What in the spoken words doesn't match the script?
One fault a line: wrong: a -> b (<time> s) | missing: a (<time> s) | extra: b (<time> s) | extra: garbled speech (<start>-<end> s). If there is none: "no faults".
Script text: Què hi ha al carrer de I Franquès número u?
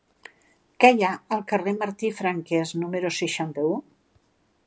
extra: Martí (1.8 s)
extra: seixanta (3.2 s)